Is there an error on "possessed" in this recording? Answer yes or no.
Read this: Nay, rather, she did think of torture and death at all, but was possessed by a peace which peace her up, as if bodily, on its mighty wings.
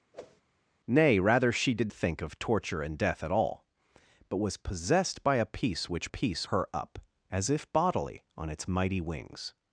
no